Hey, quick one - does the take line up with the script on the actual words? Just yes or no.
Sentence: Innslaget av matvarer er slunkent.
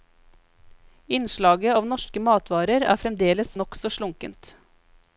no